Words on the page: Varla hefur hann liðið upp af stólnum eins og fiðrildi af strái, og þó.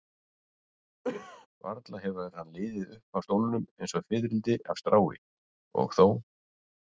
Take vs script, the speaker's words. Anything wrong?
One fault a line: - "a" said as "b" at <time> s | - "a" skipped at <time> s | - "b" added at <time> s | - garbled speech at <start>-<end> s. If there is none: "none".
none